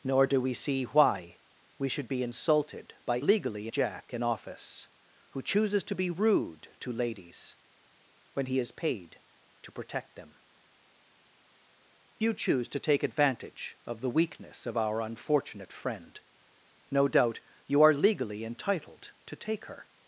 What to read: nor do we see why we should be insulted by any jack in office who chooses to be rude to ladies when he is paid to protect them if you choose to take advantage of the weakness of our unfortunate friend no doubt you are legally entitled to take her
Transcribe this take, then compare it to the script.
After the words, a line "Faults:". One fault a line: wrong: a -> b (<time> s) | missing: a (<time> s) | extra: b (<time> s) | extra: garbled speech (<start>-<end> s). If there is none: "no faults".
nor do we see why we should be insulted by legally jack in office who chooses to be rude to ladies when he is paid to protect them you choose to take advantage of the weakness of our unfortunate friend no doubt you are legally entitled to take her
Faults:
wrong: any -> legally (3.2 s)
missing: if (10.3 s)